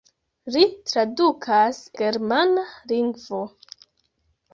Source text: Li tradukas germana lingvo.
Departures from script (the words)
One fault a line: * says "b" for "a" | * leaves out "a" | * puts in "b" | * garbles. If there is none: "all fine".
all fine